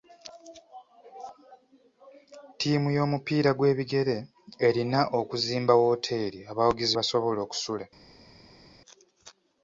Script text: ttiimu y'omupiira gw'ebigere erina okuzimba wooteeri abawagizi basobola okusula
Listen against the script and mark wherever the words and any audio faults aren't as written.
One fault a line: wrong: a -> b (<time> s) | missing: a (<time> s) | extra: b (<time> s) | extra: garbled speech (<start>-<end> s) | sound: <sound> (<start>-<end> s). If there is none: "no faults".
no faults